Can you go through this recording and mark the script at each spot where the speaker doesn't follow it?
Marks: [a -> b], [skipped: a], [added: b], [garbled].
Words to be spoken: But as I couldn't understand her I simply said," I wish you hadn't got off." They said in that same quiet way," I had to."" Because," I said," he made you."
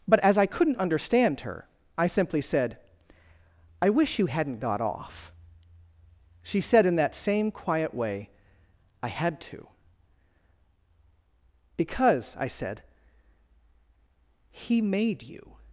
But as I couldn't understand her I simply said," I wish you hadn't got off." [They -> She] said in that same quiet way," I had to."" Because," I said," he made you."